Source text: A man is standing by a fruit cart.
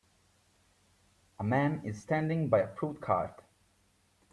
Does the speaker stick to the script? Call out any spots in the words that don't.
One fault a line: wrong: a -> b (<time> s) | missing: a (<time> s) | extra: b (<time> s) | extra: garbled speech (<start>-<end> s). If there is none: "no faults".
no faults